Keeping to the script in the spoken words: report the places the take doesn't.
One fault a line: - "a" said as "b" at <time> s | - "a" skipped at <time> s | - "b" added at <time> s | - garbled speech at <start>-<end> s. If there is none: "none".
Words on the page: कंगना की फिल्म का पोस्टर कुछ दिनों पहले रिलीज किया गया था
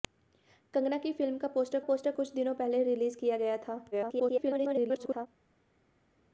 - "पोस्टर" added at 1.8 s
- garbled speech at 3.9-5.3 s